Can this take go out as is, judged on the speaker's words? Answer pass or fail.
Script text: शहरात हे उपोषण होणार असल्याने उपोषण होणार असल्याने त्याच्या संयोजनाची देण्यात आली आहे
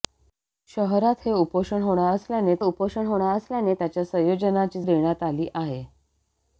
pass